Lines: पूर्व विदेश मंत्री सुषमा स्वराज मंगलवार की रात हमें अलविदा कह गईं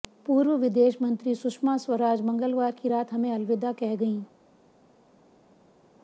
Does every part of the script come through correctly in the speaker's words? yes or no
yes